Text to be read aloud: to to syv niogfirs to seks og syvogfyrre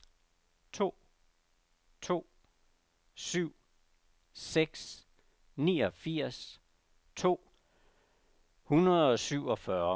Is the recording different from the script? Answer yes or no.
yes